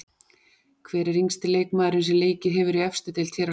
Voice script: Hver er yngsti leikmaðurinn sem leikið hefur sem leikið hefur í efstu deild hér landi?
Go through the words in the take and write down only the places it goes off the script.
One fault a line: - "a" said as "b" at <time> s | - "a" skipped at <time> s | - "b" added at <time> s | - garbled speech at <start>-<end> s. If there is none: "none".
- "sem leikið hefur" skipped at 2.8 s
- "á" added at 3.4 s